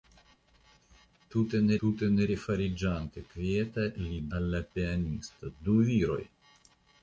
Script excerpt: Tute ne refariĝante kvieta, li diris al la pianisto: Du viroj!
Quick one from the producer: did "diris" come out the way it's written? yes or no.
no